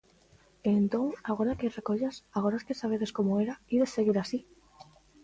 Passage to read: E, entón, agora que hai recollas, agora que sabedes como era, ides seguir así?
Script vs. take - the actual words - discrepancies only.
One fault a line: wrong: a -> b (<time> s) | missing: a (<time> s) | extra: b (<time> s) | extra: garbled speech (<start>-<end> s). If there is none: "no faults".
no faults